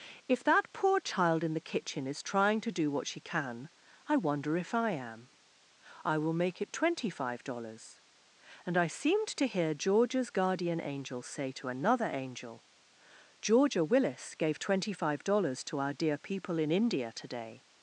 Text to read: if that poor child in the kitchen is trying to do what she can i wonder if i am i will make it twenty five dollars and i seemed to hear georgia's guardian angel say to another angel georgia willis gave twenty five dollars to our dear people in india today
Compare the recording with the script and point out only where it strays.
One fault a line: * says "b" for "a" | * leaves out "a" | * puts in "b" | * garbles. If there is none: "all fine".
all fine